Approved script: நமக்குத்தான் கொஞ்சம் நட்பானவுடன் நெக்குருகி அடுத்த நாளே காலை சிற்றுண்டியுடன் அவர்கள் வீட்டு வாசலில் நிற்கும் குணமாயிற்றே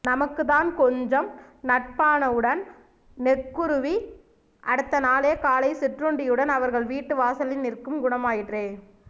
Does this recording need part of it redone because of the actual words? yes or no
no